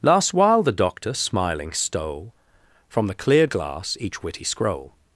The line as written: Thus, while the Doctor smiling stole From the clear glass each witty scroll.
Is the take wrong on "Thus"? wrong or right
wrong